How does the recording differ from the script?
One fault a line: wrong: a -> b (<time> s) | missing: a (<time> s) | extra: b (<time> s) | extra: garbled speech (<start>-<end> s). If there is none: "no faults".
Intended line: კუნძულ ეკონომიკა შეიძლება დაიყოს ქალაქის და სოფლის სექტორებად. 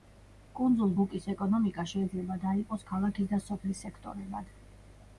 extra: ბუკის (1.0 s)